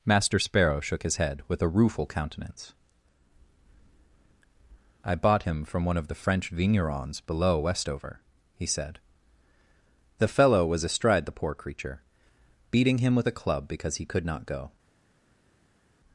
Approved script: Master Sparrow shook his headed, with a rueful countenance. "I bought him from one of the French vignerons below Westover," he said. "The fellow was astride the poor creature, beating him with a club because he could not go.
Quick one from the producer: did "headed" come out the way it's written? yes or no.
no